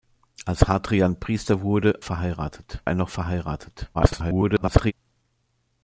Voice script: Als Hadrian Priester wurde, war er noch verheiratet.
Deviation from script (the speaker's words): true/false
true